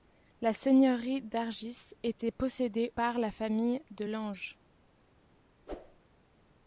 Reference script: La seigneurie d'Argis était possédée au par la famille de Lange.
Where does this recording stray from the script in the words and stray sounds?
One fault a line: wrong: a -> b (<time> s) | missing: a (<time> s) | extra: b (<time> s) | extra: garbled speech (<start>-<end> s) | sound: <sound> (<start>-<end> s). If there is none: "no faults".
missing: au (2.9 s)
sound: whoosh (5.7-6.0 s)